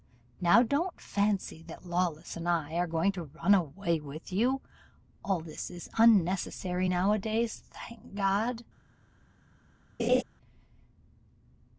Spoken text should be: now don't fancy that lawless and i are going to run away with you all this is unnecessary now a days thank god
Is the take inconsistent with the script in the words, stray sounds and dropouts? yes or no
yes